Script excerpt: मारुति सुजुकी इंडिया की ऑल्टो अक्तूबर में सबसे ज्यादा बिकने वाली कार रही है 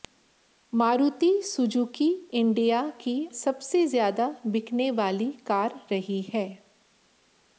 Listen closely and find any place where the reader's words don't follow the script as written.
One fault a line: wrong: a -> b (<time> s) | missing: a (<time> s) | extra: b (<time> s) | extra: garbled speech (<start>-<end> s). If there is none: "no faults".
missing: ऑल्टो अक्तूबर में (3.1 s)